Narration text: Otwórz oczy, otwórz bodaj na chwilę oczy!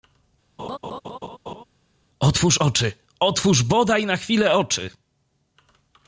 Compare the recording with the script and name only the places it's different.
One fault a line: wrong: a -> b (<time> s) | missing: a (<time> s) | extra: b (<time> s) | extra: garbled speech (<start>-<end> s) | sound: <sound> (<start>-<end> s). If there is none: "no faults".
sound: laugh (0.6-1.6 s)